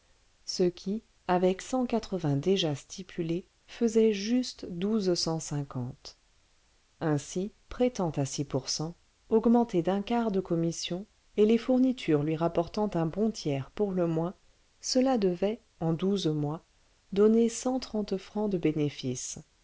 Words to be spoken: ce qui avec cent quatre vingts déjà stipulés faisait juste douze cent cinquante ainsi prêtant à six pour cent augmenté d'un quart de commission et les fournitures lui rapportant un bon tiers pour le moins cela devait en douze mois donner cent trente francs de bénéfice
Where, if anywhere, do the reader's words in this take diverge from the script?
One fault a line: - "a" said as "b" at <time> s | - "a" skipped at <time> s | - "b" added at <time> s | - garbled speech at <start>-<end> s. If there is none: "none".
none